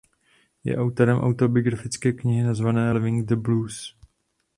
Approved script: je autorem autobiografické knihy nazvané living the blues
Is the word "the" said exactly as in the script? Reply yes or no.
yes